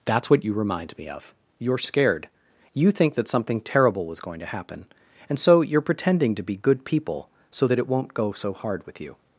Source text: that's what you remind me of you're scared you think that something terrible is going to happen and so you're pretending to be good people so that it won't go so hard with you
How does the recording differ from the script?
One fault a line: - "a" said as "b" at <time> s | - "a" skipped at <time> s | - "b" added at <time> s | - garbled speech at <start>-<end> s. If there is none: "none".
- "is" said as "was" at 4.0 s